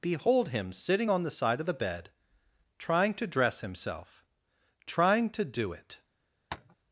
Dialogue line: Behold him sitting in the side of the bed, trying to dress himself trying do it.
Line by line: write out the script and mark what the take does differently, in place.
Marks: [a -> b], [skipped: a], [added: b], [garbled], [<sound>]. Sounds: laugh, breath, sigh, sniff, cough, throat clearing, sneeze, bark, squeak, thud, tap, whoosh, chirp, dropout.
Behold him sitting [in -> on] the side of the bed, trying to dress himself trying [added: to] do it. [tap]